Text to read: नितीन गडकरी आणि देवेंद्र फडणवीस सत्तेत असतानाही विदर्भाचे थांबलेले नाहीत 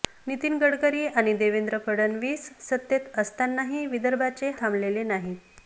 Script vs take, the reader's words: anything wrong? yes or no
no